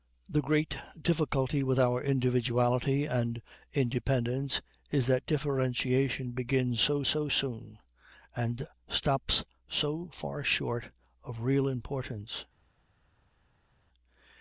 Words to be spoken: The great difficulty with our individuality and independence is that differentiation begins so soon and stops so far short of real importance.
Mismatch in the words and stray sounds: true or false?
true